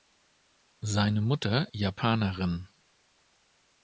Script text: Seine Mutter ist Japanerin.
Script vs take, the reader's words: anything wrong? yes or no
yes